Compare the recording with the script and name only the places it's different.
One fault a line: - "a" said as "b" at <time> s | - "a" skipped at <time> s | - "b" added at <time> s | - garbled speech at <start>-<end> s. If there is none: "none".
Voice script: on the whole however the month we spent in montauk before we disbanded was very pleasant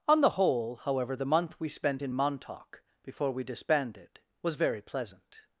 none